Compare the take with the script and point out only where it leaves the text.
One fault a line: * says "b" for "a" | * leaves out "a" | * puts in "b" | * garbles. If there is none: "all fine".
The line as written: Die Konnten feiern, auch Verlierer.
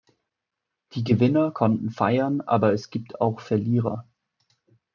* puts in "Gewinner"
* puts in "aber es gibt"